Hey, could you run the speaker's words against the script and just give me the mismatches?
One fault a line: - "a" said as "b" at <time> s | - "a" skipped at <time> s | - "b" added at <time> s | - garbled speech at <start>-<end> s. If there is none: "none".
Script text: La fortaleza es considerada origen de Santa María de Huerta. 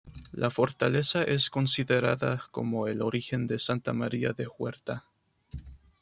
- "como el" added at 2.5 s